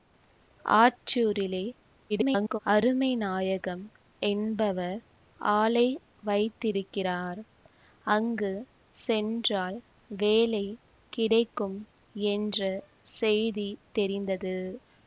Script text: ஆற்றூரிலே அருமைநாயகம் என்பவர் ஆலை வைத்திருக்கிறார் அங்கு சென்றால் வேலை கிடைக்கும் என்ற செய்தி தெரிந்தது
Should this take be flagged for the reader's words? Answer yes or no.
yes